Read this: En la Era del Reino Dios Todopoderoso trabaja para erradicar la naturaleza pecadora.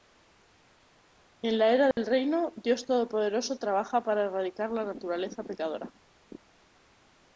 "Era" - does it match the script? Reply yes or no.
yes